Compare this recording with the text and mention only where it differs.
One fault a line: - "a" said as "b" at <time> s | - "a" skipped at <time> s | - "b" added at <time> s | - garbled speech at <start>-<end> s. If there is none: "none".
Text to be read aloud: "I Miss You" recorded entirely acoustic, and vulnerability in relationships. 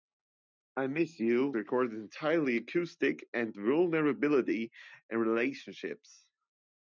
none